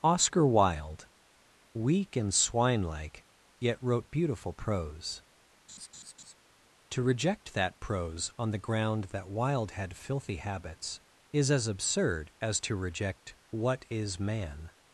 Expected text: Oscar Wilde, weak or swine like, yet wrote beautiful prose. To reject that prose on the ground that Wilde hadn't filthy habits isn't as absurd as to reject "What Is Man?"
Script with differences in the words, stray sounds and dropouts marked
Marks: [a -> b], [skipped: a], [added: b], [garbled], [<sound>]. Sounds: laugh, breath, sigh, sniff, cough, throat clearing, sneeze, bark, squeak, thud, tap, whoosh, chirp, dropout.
Oscar Wilde, weak [or -> and] swine like, yet wrote beautiful prose. [laugh] To reject that prose on the ground that Wilde [hadn't -> had] filthy habits [isn't -> is] as absurd as to reject "What Is Man?"